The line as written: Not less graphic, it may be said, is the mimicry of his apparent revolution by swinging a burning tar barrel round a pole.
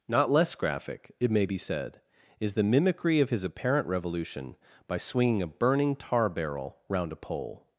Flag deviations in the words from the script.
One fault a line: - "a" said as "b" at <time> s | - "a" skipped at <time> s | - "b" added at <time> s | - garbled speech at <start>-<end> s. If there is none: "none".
none